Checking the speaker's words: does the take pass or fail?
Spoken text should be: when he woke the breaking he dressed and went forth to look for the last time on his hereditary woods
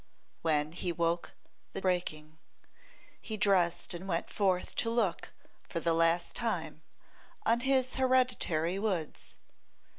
pass